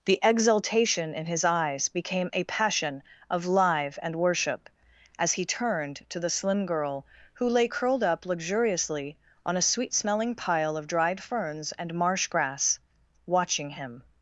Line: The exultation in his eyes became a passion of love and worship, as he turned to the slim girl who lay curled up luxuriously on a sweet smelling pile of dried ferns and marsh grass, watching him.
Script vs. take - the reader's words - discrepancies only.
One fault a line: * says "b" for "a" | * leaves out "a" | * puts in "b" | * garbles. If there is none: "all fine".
* says "live" for "love"